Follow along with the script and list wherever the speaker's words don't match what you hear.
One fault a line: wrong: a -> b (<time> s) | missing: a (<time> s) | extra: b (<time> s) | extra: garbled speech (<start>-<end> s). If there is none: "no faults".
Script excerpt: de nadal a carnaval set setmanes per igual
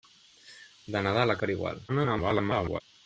missing: carnaval set setmanes (1.4 s)
extra: garbled speech (1.9-2.8 s)